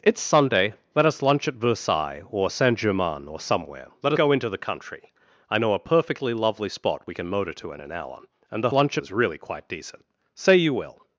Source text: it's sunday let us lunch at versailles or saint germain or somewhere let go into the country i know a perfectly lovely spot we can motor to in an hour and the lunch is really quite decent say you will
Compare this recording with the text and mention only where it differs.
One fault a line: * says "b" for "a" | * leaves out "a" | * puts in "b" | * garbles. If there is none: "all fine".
all fine